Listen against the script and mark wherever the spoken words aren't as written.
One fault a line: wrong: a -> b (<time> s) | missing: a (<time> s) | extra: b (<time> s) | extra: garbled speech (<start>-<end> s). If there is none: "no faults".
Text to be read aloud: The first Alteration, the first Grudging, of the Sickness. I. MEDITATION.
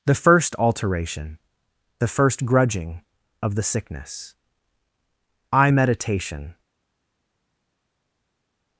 no faults